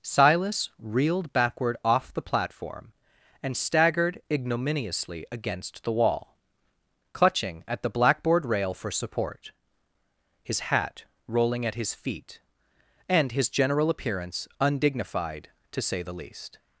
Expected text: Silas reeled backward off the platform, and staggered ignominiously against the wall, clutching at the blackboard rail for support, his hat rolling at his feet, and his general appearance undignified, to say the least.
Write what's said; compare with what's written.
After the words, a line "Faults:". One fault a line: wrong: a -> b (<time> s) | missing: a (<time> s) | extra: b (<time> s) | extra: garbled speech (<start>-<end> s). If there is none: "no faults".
Silas reeled backward off the platform, and staggered ignominiously against the wall, clutching at the blackboard rail for support, his hat rolling at his feet, and his general appearance undignified, to say the least.
Faults:
no faults